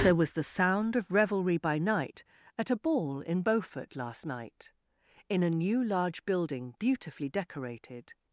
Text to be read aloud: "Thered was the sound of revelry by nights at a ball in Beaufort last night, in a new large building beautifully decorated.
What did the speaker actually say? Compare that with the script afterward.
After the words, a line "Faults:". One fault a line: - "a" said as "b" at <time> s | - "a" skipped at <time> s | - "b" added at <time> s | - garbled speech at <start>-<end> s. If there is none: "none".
"There was the sound of revelry by night at a ball in Beaufort last night, in a new large building beautifully decorated.
Faults:
- "Thered" said as "There" at 0.0 s
- "nights" said as "night" at 1.8 s